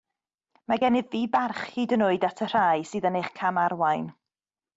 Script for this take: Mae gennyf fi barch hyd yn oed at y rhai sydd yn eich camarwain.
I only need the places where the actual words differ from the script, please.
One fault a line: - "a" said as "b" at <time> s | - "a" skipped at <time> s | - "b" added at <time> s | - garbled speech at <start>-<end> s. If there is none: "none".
none